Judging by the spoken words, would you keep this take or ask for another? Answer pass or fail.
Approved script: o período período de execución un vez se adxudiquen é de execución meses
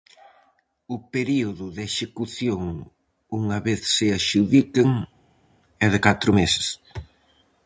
fail